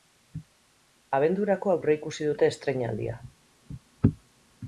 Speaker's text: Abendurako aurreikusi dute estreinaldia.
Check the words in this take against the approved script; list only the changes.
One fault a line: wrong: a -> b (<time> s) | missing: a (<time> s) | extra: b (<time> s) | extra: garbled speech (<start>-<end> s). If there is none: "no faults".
no faults